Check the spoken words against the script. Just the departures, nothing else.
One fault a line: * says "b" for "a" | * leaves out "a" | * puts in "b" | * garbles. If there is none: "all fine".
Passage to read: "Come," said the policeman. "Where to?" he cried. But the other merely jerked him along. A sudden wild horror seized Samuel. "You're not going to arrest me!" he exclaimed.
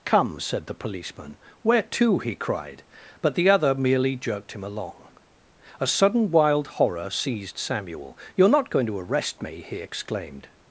all fine